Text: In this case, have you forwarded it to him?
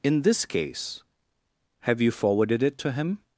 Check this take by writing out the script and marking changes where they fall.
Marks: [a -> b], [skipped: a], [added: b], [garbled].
In this case, have you forwarded it to him?